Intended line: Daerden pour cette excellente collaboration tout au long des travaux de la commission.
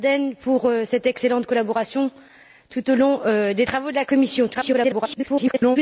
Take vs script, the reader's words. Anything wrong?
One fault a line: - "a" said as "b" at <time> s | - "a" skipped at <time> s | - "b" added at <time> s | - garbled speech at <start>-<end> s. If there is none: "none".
- garbled speech at 4.5-5.8 s